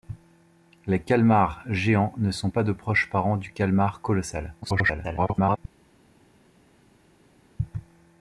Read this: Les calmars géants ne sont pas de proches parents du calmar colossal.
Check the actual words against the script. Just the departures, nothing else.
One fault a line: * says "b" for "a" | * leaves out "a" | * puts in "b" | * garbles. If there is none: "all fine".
* garbles